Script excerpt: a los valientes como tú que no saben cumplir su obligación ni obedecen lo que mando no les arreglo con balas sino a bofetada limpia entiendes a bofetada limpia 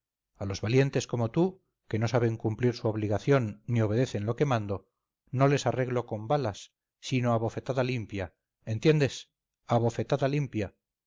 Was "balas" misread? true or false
false